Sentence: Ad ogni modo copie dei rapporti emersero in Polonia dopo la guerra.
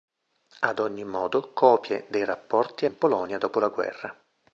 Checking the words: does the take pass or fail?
fail